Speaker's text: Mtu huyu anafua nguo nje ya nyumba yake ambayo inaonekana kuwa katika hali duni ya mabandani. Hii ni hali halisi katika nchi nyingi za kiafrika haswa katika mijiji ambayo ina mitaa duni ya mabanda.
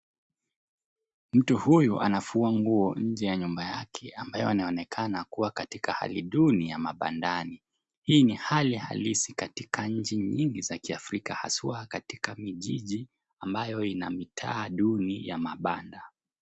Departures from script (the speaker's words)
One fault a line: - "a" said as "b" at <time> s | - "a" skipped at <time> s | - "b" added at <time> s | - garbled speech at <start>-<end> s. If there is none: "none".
none